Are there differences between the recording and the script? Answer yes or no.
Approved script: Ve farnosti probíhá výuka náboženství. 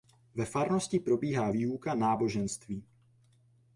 no